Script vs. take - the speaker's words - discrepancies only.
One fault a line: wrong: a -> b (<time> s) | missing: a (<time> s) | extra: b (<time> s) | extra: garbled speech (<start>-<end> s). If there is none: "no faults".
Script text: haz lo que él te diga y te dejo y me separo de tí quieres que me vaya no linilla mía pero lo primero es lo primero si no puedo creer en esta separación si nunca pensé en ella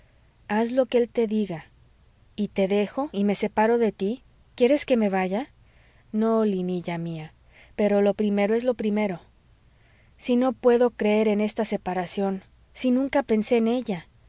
no faults